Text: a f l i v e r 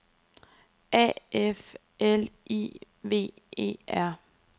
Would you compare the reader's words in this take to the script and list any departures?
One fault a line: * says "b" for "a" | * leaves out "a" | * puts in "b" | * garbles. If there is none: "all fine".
all fine